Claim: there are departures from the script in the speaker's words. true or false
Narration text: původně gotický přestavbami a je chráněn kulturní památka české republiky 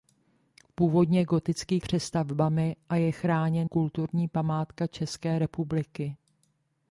false